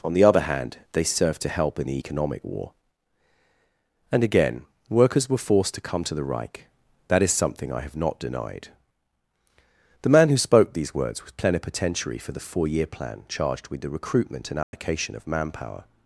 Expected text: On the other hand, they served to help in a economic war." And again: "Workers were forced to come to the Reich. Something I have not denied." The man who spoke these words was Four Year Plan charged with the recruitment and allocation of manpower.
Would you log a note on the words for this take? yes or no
yes